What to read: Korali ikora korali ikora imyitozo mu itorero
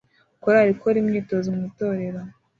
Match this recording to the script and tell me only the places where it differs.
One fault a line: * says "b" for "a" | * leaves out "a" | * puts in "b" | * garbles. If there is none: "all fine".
* leaves out "korali ikora"